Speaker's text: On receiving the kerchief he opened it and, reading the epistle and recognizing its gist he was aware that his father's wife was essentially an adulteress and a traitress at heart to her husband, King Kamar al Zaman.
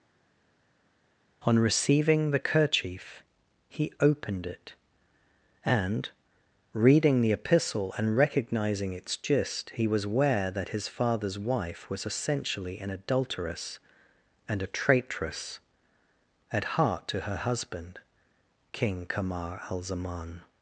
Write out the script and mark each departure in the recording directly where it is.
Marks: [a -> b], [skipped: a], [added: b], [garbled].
On receiving the kerchief he opened it and, reading the epistle and recognizing its gist he was aware that his father's wife was essentially an adulteress and a traitress at heart to her husband, King Kamar al Zaman.